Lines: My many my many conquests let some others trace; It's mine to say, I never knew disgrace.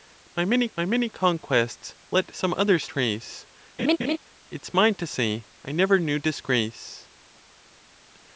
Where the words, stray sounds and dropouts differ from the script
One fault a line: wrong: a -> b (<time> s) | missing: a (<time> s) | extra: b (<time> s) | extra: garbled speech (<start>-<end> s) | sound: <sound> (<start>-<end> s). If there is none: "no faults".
sound: laugh (3.8-4.2 s)